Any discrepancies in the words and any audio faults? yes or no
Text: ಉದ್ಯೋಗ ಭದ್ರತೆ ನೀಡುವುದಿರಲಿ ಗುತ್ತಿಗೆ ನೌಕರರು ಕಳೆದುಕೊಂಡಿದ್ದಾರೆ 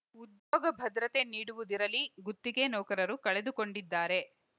yes